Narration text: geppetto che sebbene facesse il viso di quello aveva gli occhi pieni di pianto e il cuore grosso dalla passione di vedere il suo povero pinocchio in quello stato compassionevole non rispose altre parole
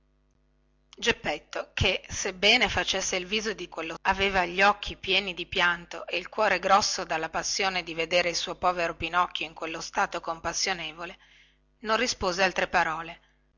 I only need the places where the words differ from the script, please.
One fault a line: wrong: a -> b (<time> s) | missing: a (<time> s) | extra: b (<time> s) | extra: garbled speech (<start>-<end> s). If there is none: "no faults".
no faults